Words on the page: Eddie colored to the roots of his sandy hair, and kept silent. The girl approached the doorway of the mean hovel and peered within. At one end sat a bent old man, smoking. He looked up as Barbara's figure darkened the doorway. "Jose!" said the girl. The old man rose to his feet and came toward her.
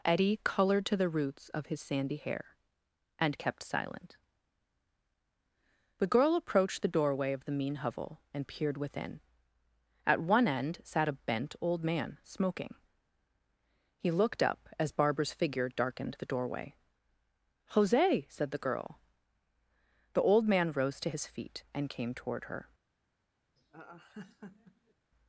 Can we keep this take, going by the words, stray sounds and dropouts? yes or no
no